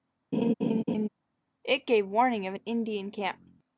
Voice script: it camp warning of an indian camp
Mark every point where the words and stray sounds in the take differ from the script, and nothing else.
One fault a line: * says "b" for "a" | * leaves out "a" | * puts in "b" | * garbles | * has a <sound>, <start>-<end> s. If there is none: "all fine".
* has a laugh, 0.3-1.1 s
* says "gave" for "camp"